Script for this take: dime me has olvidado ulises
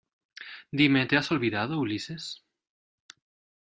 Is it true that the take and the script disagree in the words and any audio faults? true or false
true